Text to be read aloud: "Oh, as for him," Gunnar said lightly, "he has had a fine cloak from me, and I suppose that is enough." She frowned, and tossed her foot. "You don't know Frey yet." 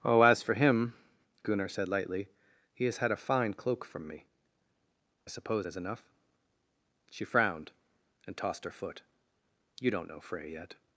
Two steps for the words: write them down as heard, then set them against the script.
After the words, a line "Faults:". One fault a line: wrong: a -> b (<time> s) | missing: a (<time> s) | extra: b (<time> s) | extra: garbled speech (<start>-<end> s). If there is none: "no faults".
"Oh, as for him," Gunnar said lightly, "he has had a fine cloak from me, I suppose is enough." She frowned, and tossed her foot. "You don't know Frey yet."
Faults:
missing: and (4.2 s)
missing: that (5.7 s)